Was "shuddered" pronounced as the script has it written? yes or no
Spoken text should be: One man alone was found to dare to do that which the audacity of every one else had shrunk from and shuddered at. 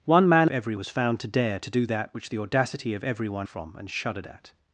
yes